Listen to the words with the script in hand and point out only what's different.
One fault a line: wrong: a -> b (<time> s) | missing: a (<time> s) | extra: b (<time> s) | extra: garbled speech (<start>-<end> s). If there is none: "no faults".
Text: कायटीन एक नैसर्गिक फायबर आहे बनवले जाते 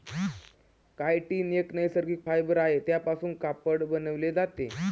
extra: त्यापासून कापड (2.8 s)